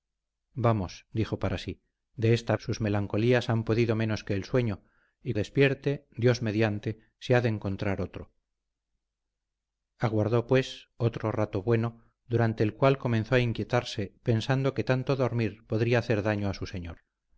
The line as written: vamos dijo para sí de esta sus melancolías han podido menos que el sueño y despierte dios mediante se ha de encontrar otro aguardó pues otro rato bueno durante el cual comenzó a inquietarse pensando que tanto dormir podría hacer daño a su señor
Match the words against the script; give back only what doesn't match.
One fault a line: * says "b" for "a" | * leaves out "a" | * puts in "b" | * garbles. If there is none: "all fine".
all fine